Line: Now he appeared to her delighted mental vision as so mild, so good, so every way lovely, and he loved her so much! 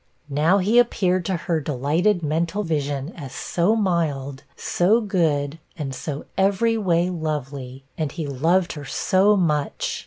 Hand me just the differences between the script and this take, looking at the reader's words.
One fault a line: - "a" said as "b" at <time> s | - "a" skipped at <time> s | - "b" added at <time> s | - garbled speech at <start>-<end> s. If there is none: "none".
- "and" added at 5.8 s